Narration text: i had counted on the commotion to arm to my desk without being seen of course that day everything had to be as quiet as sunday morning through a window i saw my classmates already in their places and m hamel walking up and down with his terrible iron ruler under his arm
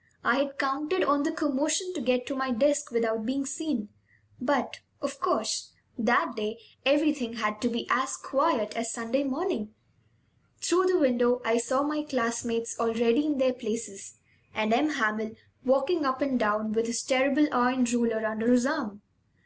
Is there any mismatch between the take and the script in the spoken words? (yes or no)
yes